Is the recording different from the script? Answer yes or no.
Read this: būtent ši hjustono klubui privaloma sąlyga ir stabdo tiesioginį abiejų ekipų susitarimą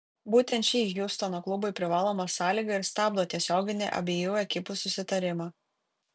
no